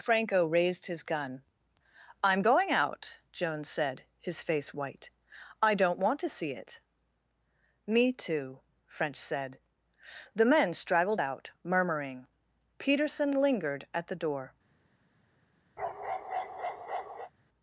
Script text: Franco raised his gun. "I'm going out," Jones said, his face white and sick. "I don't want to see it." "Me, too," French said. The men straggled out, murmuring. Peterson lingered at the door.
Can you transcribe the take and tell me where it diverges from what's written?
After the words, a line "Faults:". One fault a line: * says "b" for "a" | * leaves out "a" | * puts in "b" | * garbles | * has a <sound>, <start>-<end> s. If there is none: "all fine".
Franco raised his gun. "I'm going out," Jones said, his face white. "I don't want to see it." "Me, too," French said. The men straggled out, murmuring. Peterson lingered at the door.
Faults:
* leaves out "and sick"
* has a bark, 15.8-17.3 s